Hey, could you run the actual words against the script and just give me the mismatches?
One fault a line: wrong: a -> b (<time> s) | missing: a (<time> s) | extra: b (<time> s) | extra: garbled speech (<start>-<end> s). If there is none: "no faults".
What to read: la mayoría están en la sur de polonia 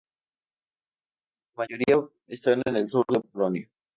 wrong: la -> el (2.8 s)